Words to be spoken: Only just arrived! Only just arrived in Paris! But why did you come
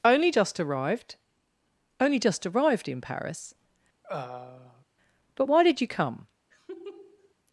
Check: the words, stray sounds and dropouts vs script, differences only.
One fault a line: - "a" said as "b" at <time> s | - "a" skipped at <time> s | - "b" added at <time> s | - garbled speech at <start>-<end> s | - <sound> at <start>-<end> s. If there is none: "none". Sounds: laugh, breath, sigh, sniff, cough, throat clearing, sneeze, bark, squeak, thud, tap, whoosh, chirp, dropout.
- throat clearing at 4.0-4.9 s
- laugh at 6.5-7.3 s